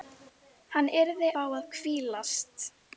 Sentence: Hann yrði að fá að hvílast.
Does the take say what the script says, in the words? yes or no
no